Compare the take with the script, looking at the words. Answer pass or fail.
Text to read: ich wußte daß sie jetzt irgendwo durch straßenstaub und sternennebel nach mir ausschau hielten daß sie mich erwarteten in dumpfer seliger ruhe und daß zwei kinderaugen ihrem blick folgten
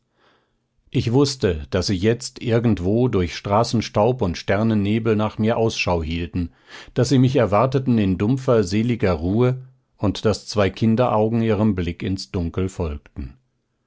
fail